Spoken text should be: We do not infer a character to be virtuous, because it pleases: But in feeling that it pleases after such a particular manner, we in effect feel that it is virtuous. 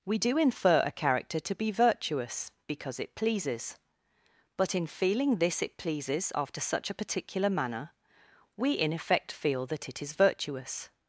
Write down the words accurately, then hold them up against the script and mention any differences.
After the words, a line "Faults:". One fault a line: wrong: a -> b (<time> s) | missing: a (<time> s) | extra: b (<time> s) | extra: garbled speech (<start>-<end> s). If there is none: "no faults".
We do infer a character to be virtuous, because it pleases: But in feeling this it pleases after such a particular manner, we in effect feel that it is virtuous.
Faults:
missing: not (0.4 s)
wrong: that -> this (5.4 s)